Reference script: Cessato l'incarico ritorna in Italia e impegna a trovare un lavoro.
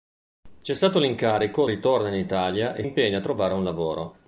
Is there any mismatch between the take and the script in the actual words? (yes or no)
no